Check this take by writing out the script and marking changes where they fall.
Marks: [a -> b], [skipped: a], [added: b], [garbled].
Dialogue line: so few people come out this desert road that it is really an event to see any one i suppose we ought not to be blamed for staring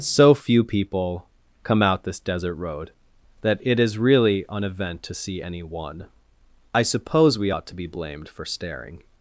so few people come out this desert road that it is really an event to see any one i suppose we ought [skipped: not] to be blamed for staring